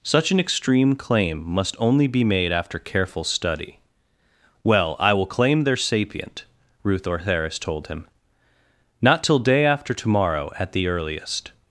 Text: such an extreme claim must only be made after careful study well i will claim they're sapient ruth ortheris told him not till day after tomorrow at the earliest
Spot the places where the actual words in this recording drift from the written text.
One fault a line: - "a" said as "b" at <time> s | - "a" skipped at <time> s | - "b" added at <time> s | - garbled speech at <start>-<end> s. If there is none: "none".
none